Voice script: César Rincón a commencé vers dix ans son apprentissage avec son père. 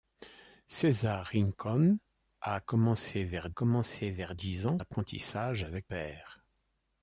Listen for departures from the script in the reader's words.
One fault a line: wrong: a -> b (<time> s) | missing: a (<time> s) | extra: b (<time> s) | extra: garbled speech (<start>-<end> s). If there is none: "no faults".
extra: commencé vers (3.5 s)
missing: son (4.8 s)
missing: son (5.9 s)